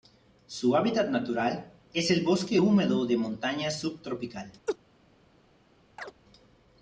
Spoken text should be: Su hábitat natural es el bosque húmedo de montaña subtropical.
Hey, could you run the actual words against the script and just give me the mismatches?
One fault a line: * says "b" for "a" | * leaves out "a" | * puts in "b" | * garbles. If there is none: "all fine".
all fine